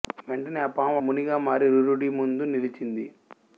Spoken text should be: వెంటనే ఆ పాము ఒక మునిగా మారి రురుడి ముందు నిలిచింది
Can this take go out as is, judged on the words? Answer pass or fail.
fail